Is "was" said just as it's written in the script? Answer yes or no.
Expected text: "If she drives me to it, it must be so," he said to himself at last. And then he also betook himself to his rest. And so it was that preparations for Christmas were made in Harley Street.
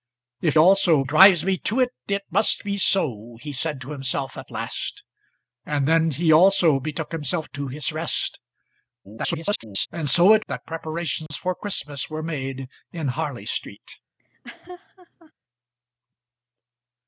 no